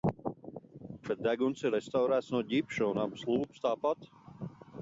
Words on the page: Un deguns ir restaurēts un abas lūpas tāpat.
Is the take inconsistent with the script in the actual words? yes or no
yes